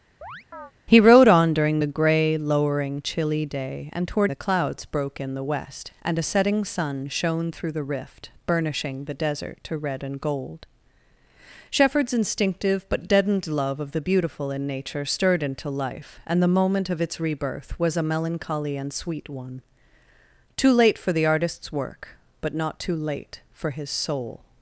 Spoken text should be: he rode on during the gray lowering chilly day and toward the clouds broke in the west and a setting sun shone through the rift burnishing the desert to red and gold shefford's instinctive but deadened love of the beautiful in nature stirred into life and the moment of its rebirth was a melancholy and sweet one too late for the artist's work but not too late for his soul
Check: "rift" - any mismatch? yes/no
no